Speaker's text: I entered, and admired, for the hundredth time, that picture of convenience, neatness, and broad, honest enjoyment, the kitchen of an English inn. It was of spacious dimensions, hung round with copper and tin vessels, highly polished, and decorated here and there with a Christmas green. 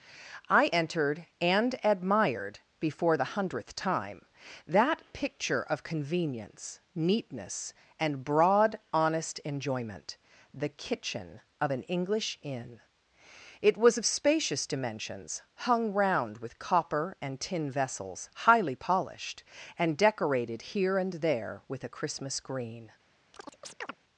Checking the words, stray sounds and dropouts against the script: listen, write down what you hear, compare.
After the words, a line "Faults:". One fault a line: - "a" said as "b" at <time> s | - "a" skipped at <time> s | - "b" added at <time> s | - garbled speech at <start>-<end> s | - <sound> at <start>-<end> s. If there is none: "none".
I entered, and admired, before the hundredth time, that picture of convenience, neatness, and broad, honest enjoyment, the kitchen of an English inn. It was of spacious dimensions, hung round with copper and tin vessels, highly polished, and decorated here and there with a Christmas green.
Faults:
- "for" said as "before" at 2.8 s
- chirp at 23.3-23.9 s